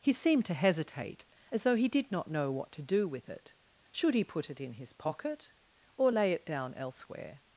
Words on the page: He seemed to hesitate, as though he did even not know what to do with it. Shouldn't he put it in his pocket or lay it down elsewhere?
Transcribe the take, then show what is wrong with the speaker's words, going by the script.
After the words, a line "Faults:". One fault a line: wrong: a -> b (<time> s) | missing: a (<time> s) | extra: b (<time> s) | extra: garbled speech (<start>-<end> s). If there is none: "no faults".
He seemed to hesitate, as though he did not know what to do with it. Should he put it in his pocket or lay it down elsewhere?
Faults:
missing: even (2.1 s)
wrong: Shouldn't -> Should (3.9 s)